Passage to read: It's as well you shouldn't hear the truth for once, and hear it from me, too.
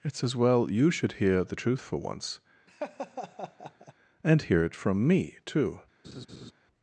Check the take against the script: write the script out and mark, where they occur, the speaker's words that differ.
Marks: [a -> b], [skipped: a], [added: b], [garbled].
It's as well you [shouldn't -> should] hear the truth for once, and hear it from me, too.